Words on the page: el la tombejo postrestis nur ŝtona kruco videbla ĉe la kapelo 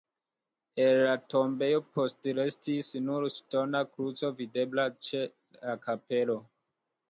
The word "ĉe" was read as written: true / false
true